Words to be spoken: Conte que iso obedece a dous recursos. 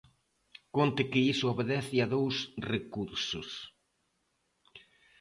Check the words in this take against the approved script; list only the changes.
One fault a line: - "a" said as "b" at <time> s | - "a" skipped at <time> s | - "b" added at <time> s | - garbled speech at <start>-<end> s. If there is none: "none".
none